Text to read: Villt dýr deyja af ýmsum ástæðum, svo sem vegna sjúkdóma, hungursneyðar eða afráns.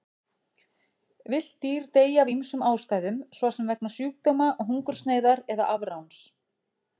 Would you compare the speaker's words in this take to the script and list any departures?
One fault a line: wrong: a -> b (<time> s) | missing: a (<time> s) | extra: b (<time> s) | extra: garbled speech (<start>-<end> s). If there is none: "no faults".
no faults